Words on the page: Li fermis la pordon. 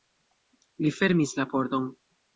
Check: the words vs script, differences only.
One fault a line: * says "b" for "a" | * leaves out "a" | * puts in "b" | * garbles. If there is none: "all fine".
all fine